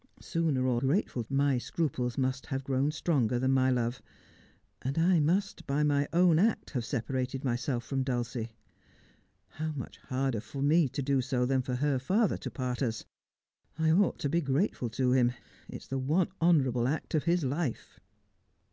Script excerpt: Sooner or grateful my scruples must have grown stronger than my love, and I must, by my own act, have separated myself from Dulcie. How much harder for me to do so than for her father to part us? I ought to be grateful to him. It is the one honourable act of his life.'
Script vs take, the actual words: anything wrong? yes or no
no